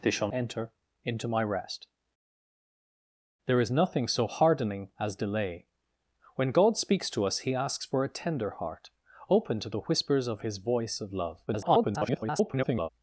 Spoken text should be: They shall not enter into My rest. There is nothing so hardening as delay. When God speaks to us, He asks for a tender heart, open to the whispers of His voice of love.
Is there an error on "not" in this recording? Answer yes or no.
yes